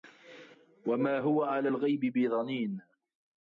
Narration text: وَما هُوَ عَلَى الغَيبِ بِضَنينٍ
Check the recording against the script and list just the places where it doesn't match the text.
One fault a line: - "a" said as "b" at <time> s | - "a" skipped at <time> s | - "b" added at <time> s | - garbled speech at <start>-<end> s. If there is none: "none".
none